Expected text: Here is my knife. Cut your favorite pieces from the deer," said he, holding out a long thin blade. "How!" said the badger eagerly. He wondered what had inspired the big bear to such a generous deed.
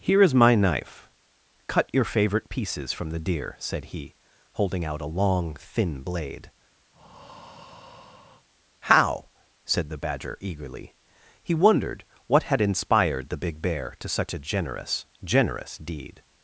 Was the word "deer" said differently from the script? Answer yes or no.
no